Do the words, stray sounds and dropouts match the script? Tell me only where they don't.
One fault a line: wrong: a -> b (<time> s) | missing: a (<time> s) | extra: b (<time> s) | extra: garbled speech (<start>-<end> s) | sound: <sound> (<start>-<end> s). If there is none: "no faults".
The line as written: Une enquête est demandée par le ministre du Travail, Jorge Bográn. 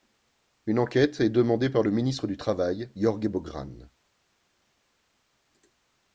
no faults